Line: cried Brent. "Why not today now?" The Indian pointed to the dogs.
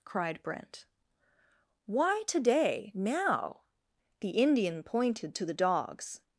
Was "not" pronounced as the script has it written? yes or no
no